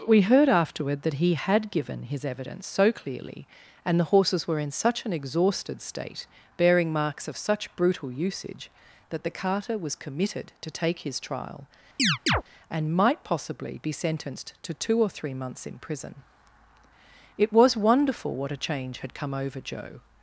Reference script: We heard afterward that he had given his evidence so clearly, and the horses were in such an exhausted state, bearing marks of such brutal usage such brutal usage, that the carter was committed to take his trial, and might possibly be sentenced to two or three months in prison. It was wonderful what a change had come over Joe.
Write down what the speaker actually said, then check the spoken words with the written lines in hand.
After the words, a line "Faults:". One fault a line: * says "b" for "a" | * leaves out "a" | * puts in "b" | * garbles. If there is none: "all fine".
We heard afterward that he had given his evidence so clearly, and the horses were in such an exhausted state, bearing marks of such brutal usage, that the carter was committed to take his trial, and might possibly be sentenced to two or three months in prison. It was wonderful what a change had come over Joe.
Faults:
* leaves out "such brutal usage"